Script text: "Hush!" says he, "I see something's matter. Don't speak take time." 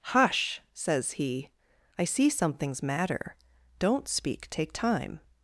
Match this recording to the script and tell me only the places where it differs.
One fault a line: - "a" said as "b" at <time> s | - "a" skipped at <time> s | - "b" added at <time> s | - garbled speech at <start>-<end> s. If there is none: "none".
none